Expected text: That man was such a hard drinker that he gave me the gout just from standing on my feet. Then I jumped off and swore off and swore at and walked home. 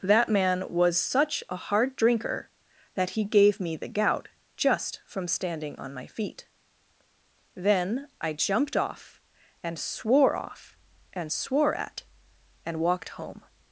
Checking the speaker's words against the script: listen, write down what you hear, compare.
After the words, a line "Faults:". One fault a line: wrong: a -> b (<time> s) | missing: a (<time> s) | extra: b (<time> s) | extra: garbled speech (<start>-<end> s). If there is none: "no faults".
That man was such a hard drinker that he gave me the gout just from standing on my feet. Then I jumped off and swore off and swore at and walked home.
Faults:
no faults